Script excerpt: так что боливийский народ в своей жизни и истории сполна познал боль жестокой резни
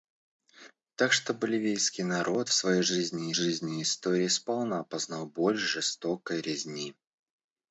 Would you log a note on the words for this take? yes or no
yes